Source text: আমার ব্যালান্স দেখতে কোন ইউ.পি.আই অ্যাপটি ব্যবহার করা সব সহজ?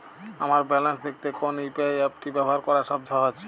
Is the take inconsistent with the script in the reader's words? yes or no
no